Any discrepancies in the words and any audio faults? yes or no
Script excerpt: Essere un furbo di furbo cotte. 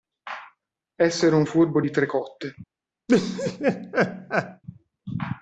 yes